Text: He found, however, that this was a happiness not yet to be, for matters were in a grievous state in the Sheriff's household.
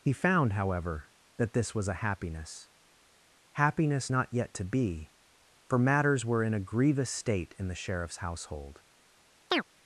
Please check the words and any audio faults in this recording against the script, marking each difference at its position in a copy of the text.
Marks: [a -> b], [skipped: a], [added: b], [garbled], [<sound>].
He found, however, that this was a happiness [added: happiness] not yet to be, for matters were in a grievous state in the Sheriff's household. [chirp]